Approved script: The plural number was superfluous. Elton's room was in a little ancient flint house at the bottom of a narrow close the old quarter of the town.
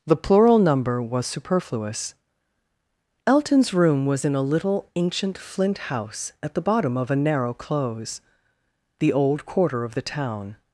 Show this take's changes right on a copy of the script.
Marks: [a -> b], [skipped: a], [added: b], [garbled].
The plural number was superfluous. Elton's room was in a little ancient flint house at the bottom of a narrow close the old quarter of the town.